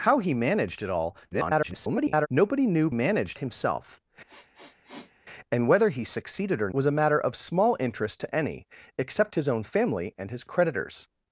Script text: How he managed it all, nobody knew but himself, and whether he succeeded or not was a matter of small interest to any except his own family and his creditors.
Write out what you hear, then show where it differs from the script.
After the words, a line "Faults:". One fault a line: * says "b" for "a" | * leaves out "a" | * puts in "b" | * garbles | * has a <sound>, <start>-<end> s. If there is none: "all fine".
How he managed it all, [garbled] nobody knew managed himself, and whether he succeeded or was a matter of small interest to any except his own family and his creditors.
Faults:
* garbles
* says "managed" for "but"
* has a sniff, 4.3-5.1 s
* leaves out "not"